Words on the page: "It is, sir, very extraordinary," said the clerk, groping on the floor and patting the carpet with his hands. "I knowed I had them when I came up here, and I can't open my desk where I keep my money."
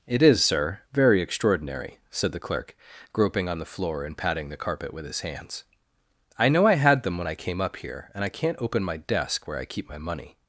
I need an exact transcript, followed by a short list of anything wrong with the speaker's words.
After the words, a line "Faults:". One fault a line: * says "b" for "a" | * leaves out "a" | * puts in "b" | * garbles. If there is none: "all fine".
"It is, sir, very extraordinary," said the clerk, groping on the floor and patting the carpet with his hands. "I know I had them when I came up here, and I can't open my desk where I keep my money."
Faults:
* says "know" for "knowed"